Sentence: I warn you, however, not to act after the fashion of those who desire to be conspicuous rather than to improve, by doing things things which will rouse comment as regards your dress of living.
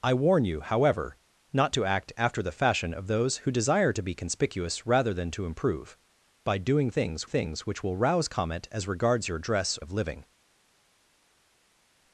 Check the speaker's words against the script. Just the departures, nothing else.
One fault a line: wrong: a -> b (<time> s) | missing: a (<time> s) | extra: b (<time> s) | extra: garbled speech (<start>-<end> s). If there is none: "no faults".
no faults